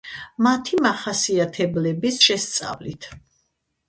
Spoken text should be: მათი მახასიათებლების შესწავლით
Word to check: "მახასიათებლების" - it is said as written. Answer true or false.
true